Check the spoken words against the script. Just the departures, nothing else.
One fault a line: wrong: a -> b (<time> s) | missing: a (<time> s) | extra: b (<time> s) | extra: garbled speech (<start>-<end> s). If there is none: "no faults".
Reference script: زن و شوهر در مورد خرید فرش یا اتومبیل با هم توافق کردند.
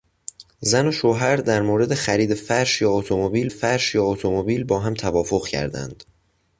extra: فرش یا اتومبیل (3.5 s)